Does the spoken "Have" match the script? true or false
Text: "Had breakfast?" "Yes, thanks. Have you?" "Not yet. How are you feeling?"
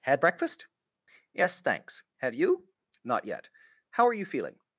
true